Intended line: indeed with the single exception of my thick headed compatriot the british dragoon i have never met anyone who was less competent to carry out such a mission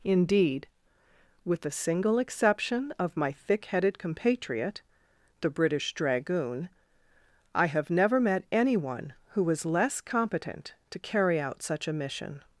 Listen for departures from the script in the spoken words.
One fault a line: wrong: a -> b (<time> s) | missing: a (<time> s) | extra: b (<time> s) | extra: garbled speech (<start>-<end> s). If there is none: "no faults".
no faults